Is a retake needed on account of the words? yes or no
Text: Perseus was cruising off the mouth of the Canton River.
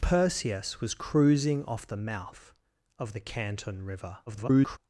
yes